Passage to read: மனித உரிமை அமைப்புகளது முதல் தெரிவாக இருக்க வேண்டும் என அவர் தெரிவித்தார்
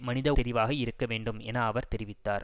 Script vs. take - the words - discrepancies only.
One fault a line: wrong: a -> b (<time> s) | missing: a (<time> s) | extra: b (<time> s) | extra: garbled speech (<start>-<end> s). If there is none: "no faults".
missing: உரிமை அமைப்புகளது முதல் (0.3 s)